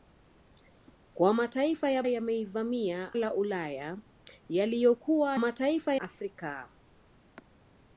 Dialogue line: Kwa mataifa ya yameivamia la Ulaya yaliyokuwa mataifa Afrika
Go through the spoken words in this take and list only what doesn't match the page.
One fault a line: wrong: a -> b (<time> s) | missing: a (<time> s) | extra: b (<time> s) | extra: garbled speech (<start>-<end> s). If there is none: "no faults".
no faults